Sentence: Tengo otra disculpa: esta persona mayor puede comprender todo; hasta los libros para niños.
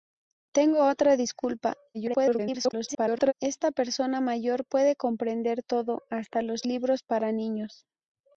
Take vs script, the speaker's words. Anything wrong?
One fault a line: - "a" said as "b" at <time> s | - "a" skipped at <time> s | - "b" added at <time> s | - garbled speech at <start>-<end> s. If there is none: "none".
- garbled speech at 1.9-3.3 s